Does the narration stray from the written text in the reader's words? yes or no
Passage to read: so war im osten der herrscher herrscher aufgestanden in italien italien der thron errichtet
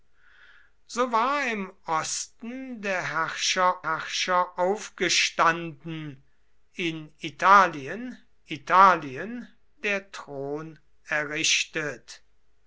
no